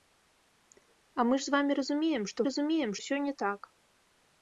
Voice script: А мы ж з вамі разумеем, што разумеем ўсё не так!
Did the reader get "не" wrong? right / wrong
right